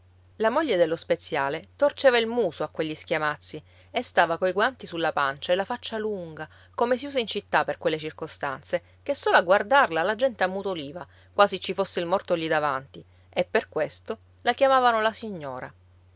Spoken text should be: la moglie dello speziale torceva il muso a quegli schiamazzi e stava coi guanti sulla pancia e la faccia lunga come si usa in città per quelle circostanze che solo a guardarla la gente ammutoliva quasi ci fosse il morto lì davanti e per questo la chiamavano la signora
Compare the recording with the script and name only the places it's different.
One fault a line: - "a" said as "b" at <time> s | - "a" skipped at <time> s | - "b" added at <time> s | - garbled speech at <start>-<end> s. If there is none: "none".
none